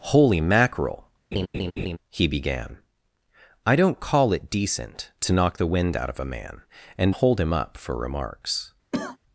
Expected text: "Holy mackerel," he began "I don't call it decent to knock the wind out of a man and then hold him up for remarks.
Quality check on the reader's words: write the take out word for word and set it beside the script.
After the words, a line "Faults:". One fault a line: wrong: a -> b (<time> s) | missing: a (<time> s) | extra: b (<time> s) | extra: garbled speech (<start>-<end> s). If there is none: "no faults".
"Holy mackerel," he began "I don't call it decent to knock the wind out of a man and hold him up for remarks.
Faults:
missing: then (7.1 s)